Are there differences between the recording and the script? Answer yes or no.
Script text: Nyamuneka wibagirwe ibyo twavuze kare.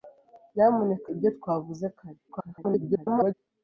yes